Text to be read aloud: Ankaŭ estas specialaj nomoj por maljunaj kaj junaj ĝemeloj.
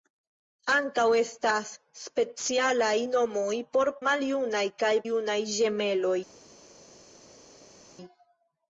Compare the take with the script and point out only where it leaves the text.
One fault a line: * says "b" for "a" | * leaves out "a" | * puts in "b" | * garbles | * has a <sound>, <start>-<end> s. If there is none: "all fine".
all fine